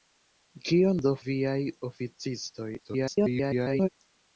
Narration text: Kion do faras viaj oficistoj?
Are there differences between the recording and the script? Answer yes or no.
yes